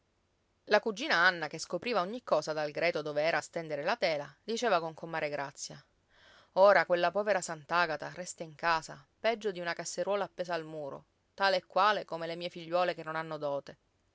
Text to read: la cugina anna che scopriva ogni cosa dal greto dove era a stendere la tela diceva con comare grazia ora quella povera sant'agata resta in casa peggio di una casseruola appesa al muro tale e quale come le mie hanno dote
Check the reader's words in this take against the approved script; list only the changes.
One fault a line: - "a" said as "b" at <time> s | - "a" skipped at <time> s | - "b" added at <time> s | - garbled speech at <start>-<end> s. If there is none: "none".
- "figliuole che non" added at 12.5 s